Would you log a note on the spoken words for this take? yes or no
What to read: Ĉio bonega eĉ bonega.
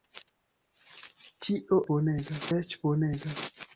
no